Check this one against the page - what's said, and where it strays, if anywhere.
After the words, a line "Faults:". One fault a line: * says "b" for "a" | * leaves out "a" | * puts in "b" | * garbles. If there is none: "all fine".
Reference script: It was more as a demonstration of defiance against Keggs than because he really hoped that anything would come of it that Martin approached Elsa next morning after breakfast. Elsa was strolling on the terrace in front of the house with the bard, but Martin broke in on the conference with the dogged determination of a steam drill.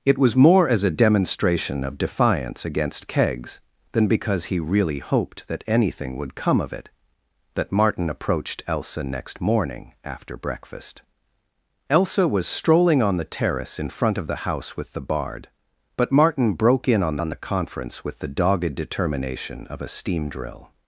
It was more as a demonstration of defiance against Keggs than because he really hoped that anything would come of it that Martin approached Elsa next morning after breakfast. Elsa was strolling on the terrace in front of the house with the bard, but Martin broke in on on the conference with the dogged determination of a steam drill.
Faults:
* puts in "on"